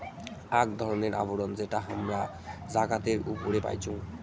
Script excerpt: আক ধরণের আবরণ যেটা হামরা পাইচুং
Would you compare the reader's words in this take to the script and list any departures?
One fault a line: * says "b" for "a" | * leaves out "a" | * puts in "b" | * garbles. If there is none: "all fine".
* puts in "জাগাতের উপরে"